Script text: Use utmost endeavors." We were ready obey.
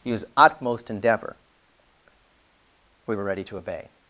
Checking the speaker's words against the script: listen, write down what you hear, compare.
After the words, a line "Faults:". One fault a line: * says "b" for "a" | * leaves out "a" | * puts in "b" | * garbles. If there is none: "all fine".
Use utmost endeavor." We were ready to obey.
Faults:
* says "endeavor" for "endeavors"
* puts in "to"